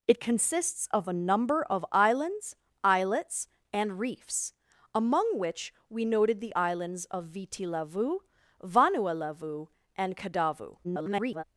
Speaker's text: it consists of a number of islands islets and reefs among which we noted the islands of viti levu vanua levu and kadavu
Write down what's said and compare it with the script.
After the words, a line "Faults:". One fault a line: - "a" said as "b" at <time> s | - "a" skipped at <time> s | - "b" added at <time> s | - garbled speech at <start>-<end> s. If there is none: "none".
it consists of a number of islands islets and reefs among which we noted the islands of viti levu vanua levu and kadavu [garbled]
Faults:
- garbled speech at 10.8-11.4 s